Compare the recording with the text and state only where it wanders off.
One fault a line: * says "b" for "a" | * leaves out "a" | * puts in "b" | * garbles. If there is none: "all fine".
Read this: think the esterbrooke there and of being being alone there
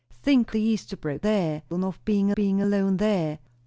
all fine